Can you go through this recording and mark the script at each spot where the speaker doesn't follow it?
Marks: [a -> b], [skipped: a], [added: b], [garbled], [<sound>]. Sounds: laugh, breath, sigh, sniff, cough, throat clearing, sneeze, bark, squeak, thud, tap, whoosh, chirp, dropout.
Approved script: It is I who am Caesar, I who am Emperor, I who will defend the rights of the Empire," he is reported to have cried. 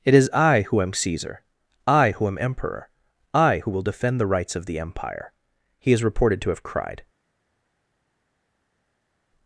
It is I who am Caesar, I who am Emperor, I who will defend the rights of the Empire," he is reported to have cried.